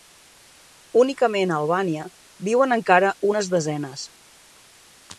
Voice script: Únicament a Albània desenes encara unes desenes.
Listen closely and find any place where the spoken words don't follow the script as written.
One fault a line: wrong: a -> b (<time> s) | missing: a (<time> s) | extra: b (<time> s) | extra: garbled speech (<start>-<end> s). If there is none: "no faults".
wrong: desenes -> viuen (2.5 s)